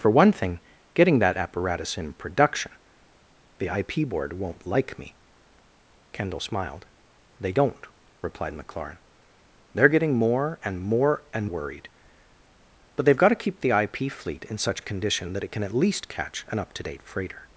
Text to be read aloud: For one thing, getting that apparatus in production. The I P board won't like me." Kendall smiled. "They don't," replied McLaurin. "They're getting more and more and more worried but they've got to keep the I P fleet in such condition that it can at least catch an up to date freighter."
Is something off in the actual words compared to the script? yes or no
yes